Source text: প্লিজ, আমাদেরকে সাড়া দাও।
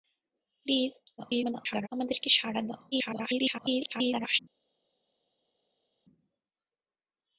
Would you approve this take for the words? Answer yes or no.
no